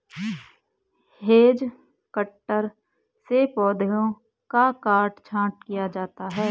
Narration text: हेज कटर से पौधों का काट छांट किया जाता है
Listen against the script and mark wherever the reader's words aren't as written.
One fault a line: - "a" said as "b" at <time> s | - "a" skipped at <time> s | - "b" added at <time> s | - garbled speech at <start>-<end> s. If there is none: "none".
none